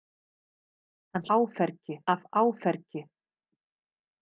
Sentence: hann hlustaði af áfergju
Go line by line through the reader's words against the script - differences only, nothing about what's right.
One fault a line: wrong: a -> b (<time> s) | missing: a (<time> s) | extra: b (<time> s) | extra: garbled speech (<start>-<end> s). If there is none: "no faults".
wrong: hlustaði -> áfergju (1.4 s)